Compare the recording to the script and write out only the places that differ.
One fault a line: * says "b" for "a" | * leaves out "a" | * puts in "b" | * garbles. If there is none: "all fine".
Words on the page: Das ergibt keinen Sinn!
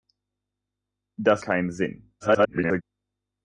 * leaves out "ergibt"
* garbles